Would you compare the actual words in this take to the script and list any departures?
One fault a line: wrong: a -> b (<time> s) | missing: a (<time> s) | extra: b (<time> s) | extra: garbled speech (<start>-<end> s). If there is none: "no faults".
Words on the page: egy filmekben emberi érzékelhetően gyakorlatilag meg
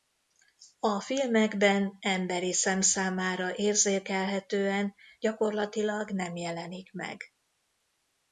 wrong: egy -> a (0.8 s)
extra: szem számára (2.5 s)
extra: nem jelenik (6.1 s)